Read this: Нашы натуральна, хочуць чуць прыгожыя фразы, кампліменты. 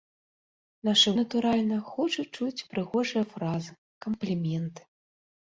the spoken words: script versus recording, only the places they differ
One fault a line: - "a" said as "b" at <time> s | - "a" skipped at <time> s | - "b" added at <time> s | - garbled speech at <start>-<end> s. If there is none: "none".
none